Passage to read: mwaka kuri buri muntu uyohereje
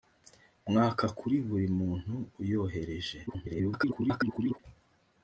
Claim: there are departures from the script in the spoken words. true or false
true